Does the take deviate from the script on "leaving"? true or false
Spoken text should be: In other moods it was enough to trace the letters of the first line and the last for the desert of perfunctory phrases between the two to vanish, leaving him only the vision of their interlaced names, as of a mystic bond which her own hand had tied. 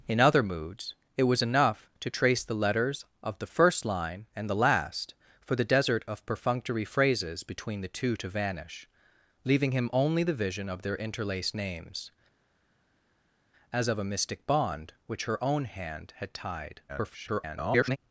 false